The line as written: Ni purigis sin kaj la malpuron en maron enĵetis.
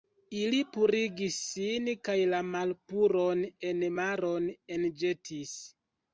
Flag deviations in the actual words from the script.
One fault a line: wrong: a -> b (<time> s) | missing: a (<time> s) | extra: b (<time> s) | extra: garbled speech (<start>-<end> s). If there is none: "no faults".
wrong: Ni -> Ili (0.3 s)